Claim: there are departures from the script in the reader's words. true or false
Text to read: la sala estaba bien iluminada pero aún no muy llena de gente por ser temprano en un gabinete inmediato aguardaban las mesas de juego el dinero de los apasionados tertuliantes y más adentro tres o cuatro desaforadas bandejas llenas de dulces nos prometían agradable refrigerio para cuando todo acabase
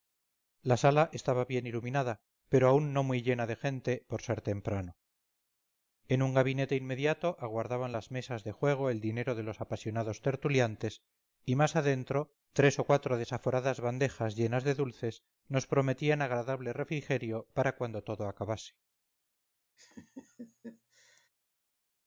false